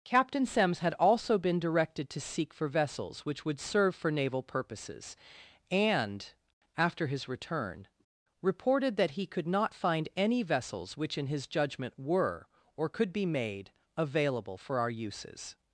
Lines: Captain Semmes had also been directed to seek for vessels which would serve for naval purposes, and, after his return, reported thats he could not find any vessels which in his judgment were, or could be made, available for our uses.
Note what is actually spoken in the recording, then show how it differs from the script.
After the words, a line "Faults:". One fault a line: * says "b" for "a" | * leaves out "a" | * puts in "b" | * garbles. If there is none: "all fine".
Captain Semmes had also been directed to seek for vessels which would serve for naval purposes, and, after his return, reported that he could not find any vessels which in his judgment were, or could be made, available for our uses.
Faults:
* says "that" for "thats"